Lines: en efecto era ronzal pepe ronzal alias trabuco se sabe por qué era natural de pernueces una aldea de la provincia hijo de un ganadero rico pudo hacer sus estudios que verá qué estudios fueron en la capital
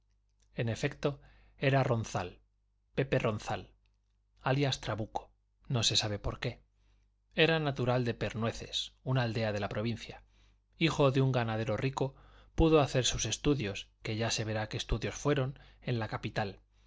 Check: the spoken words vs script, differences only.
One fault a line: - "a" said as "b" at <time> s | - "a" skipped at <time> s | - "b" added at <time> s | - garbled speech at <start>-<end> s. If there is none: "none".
- "no" added at 5.7 s
- "ya se" added at 14.2 s